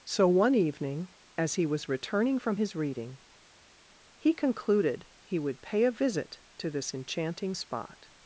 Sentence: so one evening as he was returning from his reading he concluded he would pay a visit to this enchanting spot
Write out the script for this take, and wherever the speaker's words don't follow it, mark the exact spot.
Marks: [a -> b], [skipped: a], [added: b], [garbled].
so one evening as he was returning from his reading he concluded he would pay a visit to this enchanting spot